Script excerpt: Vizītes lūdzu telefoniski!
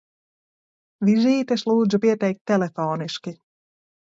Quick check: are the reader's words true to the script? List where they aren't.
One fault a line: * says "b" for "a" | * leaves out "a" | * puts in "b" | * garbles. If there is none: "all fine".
* puts in "pieteikt"